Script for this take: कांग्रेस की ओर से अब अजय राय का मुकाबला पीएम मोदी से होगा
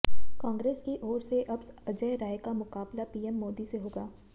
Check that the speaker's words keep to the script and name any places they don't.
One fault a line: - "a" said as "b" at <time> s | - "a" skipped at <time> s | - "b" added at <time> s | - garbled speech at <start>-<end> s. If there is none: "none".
none